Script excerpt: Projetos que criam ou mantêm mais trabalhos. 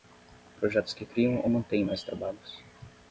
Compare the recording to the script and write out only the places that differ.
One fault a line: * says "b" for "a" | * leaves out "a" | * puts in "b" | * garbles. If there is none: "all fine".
all fine